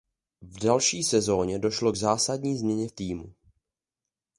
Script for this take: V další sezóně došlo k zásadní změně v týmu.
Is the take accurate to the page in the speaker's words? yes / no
yes